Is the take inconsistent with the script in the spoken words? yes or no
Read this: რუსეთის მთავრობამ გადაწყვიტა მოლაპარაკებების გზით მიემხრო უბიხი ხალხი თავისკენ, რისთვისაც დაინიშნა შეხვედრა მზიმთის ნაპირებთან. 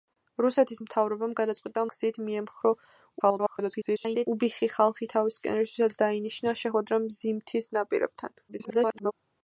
yes